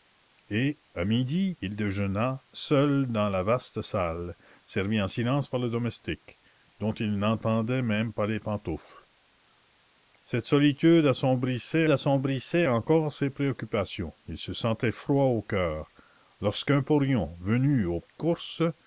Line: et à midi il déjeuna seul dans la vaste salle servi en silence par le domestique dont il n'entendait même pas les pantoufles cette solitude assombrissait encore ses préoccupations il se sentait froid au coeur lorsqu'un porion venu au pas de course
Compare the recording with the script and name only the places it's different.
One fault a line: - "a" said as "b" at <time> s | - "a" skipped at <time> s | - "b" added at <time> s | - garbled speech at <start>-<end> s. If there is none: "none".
- "assombrissait" added at 11.9 s
- "pas" skipped at 18.0 s